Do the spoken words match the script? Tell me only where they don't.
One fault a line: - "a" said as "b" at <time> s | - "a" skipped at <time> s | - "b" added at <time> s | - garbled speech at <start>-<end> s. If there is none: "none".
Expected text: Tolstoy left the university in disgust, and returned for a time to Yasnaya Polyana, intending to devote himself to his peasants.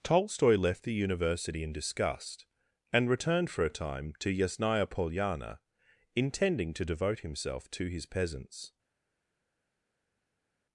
none